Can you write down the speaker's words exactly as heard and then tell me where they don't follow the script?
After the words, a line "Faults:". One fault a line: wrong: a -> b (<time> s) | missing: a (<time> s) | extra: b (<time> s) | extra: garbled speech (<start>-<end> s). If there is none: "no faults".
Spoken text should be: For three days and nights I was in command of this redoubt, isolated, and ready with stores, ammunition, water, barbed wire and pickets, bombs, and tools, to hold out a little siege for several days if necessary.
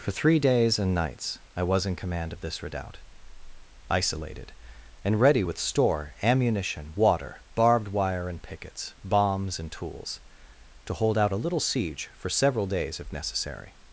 For three days and nights I was in command of this redoubt, isolated, and ready with store, ammunition, water, barbed wire and pickets, bombs, and tools, to hold out a little siege for several days if necessary.
Faults:
wrong: stores -> store (5.6 s)